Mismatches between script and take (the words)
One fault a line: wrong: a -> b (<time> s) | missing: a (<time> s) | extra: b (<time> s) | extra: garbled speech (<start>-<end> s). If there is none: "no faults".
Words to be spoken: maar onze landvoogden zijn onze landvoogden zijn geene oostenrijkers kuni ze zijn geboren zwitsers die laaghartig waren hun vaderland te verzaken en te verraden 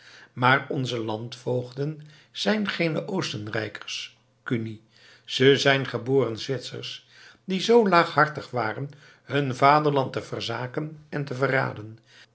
missing: onze landvoogden zijn (2.7 s)
extra: zoo (7.6 s)